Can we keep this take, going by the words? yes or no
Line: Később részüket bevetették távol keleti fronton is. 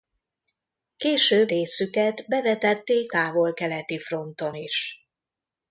yes